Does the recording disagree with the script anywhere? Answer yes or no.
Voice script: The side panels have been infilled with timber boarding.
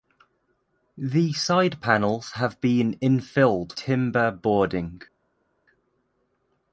yes